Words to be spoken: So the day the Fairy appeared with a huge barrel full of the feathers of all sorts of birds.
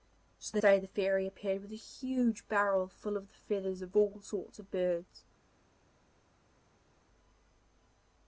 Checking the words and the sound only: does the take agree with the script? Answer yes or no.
yes